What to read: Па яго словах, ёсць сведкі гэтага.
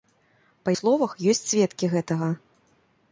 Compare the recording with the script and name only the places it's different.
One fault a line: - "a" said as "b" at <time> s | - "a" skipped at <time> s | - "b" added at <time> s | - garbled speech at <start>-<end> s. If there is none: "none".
- "яго" skipped at 0.7 s